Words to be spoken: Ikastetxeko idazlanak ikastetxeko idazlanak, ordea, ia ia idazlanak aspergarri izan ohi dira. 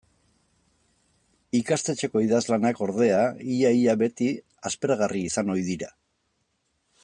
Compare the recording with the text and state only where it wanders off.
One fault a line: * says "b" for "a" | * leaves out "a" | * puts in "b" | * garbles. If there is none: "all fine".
* leaves out "ikastetxeko idazlanak"
* says "beti" for "idazlanak"